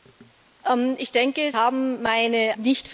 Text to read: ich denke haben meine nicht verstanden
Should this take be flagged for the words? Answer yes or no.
no